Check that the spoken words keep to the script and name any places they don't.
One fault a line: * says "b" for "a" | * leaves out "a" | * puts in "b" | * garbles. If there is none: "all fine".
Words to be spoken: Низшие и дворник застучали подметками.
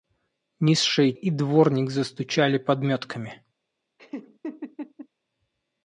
all fine